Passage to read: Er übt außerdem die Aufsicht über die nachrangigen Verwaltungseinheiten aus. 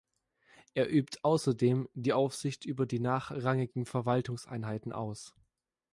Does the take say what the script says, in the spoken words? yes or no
yes